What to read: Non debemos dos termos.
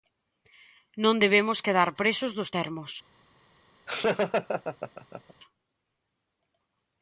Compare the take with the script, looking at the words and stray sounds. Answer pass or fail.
fail